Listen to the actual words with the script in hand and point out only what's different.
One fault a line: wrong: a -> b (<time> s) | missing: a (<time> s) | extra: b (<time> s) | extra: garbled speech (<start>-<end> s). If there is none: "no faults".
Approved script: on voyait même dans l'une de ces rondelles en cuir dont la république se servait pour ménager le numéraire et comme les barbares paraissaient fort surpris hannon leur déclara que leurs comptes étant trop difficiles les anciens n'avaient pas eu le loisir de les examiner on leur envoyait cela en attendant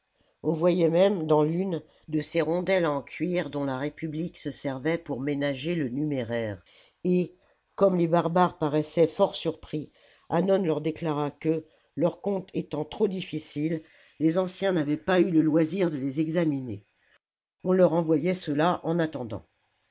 no faults